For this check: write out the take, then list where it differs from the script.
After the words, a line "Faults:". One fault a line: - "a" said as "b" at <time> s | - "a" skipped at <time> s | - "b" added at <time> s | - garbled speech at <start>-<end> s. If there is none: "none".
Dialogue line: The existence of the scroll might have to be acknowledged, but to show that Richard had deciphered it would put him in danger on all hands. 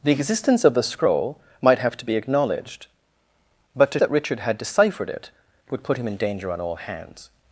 The existence of the scroll might have to be acknowledged, but to that Richard had deciphered it would put him in danger on all hands.
Faults:
- "show" skipped at 4.0 s